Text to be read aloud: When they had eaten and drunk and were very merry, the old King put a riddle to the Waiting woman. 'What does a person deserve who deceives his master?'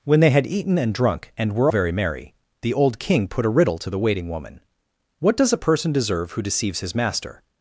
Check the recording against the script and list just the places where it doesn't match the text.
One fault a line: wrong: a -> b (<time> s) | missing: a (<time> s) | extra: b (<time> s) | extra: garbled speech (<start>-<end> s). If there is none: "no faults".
no faults